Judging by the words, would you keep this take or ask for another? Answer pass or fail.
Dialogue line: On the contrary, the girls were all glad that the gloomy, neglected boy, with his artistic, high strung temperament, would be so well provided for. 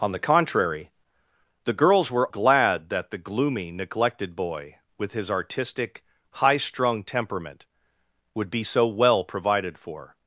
fail